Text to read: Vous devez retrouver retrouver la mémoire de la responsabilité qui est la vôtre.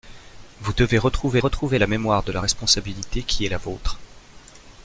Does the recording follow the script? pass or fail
pass